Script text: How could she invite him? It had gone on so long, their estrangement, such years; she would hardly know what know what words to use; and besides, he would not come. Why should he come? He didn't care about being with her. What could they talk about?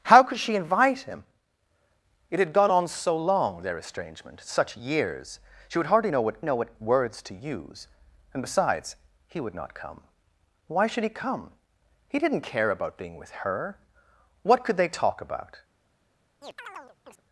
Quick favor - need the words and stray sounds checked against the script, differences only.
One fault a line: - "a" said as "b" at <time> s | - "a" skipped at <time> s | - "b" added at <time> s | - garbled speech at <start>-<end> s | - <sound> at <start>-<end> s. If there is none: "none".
- chirp at 16.4-17.2 s